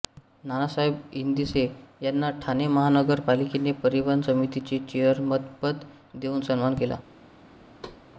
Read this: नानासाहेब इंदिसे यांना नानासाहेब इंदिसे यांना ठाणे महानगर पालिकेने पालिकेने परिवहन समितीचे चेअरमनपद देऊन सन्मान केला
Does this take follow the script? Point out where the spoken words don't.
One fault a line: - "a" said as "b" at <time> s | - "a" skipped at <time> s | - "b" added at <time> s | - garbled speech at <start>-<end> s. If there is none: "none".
- "नानासाहेब इंदिसे यांना" skipped at 2.3 s
- "पालिकेने" skipped at 3.7 s